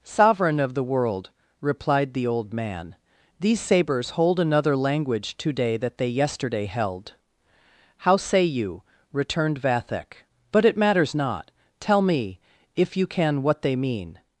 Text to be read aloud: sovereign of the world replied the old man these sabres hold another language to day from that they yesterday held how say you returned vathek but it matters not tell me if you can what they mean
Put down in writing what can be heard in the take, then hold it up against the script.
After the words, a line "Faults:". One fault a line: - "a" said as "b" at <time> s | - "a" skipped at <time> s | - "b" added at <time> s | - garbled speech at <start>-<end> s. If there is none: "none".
sovereign of the world replied the old man these sabres hold another language to day that they yesterday held how say you returned vathek but it matters not tell me if you can what they mean
Faults:
- "from" skipped at 5.8 s